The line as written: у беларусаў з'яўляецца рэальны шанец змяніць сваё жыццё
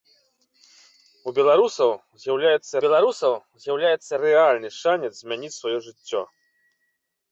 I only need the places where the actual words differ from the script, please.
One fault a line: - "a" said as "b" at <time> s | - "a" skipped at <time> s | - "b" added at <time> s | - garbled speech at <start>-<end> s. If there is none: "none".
- "беларусаў з'яўляецца" added at 2.8 s